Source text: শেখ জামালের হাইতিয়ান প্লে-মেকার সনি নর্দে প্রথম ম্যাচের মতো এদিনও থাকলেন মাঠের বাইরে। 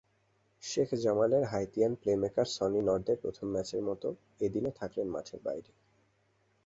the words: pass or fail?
pass